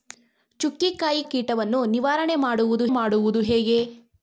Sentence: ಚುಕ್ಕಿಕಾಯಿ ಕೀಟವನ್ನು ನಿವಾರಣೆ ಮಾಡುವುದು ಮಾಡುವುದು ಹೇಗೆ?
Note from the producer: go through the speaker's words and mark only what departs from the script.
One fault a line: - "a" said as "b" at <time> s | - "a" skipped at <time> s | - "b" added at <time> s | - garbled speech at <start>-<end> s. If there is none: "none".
none